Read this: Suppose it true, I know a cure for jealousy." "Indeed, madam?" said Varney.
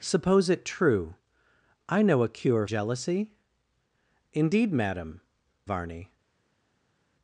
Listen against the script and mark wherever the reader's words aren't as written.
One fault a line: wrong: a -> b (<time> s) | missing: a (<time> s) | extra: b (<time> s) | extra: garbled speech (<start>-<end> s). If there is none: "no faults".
missing: for (2.6 s)
missing: said (5.2 s)